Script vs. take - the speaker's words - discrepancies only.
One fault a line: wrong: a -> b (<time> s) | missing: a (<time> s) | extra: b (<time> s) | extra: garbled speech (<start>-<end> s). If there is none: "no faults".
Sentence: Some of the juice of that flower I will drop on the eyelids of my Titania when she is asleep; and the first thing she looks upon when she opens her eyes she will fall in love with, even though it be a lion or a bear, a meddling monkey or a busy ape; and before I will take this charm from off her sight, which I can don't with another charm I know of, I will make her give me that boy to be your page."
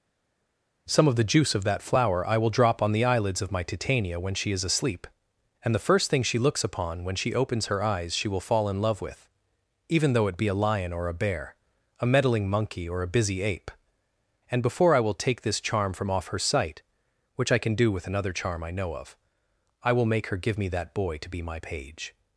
wrong: don't -> do (17.7 s)
wrong: your -> my (21.4 s)